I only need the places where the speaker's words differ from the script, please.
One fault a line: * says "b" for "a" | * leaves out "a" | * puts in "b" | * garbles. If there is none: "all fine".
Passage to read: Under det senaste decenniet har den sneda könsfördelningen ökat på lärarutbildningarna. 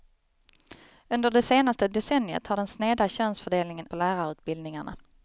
* leaves out "ökat"